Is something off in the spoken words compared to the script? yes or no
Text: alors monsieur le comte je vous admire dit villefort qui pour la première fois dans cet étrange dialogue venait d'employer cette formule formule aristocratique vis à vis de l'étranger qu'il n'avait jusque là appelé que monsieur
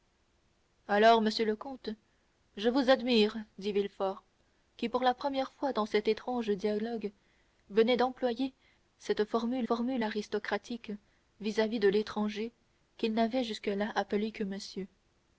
no